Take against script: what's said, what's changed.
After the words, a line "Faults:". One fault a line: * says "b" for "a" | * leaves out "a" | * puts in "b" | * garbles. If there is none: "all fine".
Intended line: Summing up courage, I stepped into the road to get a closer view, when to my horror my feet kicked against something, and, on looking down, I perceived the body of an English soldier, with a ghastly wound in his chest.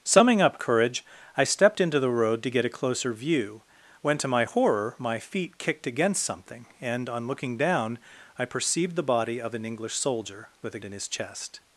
Summing up courage, I stepped into the road to get a closer view, when to my horror my feet kicked against something, and, on looking down, I perceived the body of an English soldier, with a in his chest.
Faults:
* leaves out "ghastly wound"